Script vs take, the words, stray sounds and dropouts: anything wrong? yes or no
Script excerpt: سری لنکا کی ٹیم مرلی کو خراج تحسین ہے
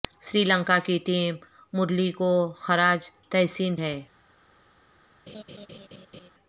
yes